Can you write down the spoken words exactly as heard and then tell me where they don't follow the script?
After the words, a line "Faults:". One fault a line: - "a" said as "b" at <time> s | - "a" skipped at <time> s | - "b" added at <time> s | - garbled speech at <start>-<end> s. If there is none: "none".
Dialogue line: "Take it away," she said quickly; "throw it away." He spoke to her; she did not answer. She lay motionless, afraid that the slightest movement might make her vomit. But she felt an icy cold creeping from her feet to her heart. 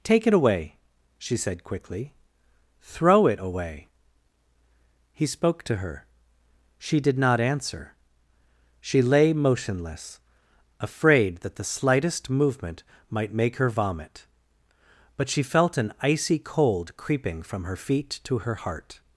"Take it away," she said quickly; "throw it away." He spoke to her; she did not answer. She lay motionless, afraid that the slightest movement might make her vomit. But she felt an icy cold creeping from her feet to her heart.
Faults:
none